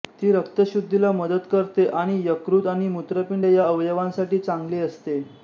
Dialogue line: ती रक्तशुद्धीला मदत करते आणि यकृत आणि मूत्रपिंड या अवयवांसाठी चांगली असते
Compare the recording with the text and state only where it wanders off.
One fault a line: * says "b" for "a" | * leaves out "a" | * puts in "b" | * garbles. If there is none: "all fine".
all fine